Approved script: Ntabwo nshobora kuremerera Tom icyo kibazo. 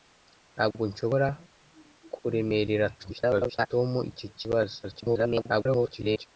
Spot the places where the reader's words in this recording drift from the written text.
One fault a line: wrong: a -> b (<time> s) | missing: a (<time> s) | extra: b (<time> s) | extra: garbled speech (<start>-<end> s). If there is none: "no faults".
extra: garbled speech (3.0-3.7 s)
extra: garbled speech (4.8-6.3 s)